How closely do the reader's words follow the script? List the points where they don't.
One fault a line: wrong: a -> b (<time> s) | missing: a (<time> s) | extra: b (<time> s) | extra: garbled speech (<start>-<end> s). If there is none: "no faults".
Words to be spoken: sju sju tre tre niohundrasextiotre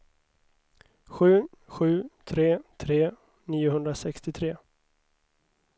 no faults